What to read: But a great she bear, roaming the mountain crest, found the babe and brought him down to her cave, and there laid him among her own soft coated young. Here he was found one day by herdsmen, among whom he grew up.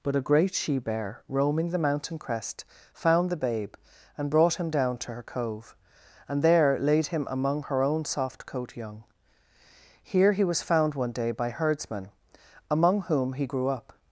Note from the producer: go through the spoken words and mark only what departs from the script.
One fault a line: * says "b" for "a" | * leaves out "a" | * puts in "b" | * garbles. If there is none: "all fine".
* says "cove" for "cave"
* says "coat" for "coated"